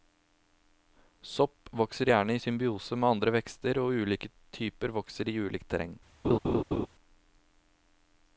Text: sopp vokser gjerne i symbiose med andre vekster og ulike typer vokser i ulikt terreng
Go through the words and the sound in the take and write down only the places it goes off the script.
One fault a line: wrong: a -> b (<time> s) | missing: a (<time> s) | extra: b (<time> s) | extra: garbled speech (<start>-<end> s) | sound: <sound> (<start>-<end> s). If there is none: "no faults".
sound: laugh (6.2-6.9 s)